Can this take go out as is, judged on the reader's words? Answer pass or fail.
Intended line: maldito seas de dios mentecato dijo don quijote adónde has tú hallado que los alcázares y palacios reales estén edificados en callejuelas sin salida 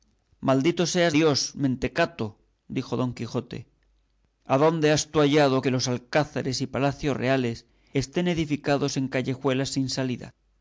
fail